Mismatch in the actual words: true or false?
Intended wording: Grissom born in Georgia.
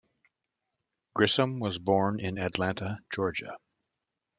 true